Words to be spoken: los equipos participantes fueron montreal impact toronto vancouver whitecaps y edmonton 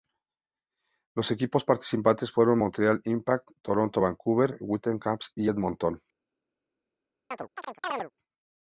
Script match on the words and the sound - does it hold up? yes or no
no